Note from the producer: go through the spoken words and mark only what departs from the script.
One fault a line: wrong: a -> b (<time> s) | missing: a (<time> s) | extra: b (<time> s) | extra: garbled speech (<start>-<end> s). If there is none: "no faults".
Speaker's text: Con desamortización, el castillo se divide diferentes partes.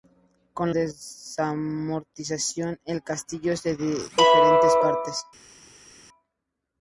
no faults